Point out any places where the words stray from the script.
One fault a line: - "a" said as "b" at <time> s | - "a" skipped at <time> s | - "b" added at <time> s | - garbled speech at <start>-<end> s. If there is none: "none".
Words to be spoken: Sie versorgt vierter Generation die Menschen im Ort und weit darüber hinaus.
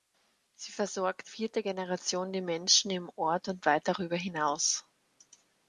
none